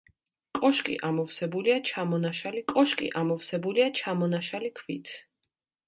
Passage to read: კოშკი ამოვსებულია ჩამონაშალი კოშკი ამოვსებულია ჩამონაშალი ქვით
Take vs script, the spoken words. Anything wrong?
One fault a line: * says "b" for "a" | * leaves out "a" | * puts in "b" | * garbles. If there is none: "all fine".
all fine